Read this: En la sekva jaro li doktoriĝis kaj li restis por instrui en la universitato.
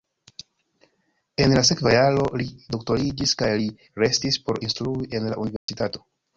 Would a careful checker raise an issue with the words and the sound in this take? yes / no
yes